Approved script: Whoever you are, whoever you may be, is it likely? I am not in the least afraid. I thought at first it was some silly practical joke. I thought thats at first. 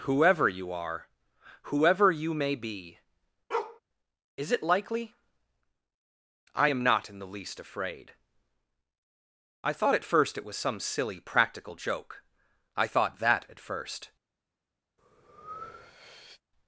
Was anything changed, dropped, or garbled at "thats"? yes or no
yes